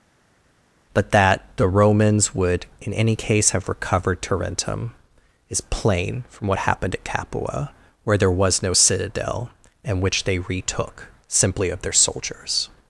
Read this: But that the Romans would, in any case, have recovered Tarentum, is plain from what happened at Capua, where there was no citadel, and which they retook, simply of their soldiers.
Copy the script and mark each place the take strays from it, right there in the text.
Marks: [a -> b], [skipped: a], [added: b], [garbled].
But that the Romans would, in any case, have recovered Tarentum, is plain from what happened at Capua, where there was no citadel, and which they retook, simply of their soldiers.